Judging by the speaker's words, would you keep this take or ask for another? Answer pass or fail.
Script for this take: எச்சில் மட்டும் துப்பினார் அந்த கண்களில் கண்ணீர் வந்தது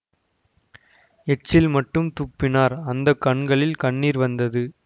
pass